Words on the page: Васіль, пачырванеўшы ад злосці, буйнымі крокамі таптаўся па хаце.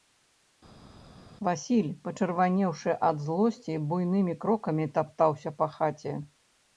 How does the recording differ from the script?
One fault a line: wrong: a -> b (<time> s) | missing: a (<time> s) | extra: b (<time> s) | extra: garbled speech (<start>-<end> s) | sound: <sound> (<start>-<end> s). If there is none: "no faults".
no faults